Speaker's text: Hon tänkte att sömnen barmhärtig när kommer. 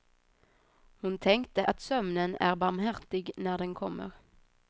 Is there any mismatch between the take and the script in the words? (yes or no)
yes